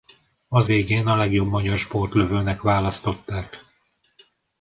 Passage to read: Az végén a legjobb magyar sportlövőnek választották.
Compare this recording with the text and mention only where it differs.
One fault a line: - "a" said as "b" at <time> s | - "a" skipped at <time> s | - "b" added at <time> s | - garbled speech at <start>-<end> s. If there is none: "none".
none